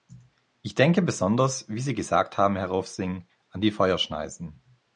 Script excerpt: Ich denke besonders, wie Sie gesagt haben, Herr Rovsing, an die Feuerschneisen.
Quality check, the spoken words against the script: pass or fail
pass